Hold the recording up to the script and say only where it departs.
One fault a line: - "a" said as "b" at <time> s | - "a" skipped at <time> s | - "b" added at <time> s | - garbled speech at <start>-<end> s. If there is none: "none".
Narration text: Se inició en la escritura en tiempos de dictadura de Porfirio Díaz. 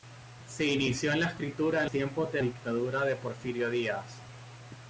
none